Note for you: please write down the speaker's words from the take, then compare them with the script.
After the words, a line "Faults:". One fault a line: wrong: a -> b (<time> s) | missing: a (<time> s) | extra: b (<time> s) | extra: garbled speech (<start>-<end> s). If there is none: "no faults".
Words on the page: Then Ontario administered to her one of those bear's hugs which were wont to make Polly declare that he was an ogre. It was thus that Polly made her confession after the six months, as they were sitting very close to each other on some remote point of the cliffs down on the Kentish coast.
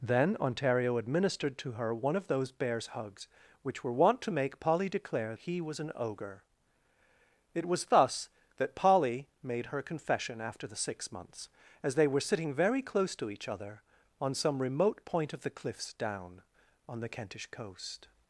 Then Ontario administered to her one of those bear's hugs which were wont to make Polly declare he was an ogre. It was thus that Polly made her confession after the six months, as they were sitting very close to each other on some remote point of the cliffs down on the Kentish coast.
Faults:
missing: that (5.3 s)